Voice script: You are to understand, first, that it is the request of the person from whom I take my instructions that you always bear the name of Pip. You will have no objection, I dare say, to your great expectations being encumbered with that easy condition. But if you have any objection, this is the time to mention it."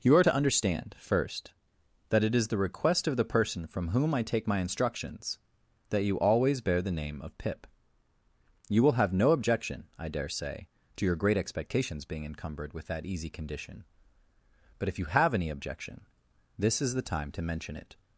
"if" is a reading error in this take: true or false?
false